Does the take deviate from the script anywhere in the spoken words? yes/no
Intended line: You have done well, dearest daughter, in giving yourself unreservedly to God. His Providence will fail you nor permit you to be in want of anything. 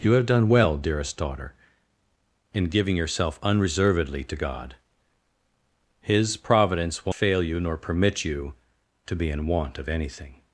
no